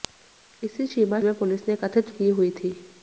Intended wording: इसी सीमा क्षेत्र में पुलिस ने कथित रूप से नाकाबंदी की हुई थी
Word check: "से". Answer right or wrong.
wrong